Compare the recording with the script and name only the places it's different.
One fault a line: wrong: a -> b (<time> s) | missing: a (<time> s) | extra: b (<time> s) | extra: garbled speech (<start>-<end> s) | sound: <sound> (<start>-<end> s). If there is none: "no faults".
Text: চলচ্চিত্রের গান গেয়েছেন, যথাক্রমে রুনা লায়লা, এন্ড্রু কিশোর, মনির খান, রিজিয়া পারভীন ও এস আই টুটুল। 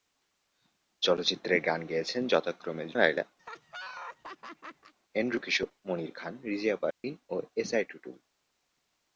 missing: রুনা (2.9 s)
sound: laugh (3.4-4.9 s)
sound: dropout (6.9-7.0 s)